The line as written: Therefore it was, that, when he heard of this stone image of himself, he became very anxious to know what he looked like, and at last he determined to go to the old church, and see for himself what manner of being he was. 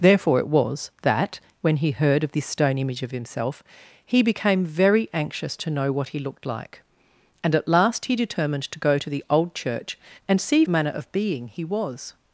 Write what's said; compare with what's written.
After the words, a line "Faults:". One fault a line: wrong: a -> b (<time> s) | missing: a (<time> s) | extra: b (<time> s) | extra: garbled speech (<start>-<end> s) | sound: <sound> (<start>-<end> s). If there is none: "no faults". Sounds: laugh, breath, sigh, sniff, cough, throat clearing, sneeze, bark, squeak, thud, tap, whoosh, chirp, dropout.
Therefore it was, that, when he heard of this stone image of himself, he became very anxious to know what he looked like, and at last he determined to go to the old church, and see manner of being he was.
Faults:
missing: for himself what (10.6 s)